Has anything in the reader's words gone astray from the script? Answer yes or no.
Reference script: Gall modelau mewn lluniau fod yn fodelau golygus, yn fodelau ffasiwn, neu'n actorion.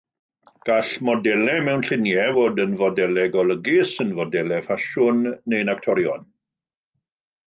no